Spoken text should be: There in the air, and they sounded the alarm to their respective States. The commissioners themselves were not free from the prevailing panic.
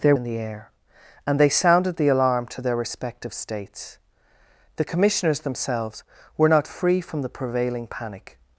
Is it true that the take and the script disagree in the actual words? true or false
false